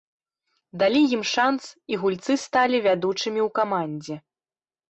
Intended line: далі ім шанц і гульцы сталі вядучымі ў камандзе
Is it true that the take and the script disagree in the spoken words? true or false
false